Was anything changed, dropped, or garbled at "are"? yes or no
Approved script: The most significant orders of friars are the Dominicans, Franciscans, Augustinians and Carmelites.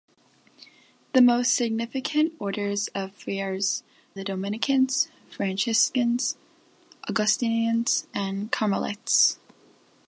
yes